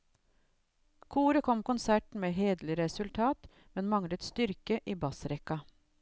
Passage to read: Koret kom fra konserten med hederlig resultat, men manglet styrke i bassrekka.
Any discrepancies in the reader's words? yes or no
yes